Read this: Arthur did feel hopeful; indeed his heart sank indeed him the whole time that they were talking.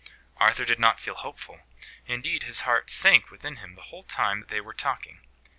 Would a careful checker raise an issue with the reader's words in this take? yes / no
yes